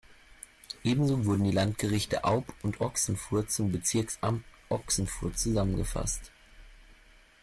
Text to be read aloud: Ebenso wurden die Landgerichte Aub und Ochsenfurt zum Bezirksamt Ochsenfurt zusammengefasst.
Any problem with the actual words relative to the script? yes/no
no